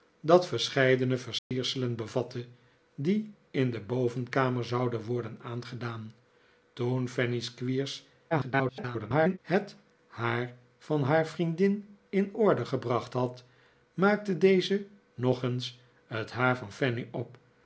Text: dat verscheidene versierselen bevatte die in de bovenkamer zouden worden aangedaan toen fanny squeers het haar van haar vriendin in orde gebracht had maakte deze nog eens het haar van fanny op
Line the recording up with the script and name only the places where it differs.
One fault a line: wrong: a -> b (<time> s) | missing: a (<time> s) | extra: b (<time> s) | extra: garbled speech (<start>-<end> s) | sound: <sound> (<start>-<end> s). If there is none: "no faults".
sound: dropout (1.4-1.5 s)
extra: garbled speech (8.3-9.4 s)